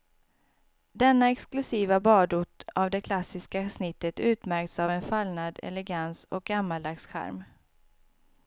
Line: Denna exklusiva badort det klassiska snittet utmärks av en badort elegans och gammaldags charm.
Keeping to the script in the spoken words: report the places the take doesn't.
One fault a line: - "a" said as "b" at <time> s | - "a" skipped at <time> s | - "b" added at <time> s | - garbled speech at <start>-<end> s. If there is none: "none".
- "av" added at 2.7 s
- "badort" said as "fallnad" at 5.0 s